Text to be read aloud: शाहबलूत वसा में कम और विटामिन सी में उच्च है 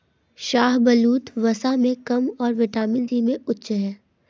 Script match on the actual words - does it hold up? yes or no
yes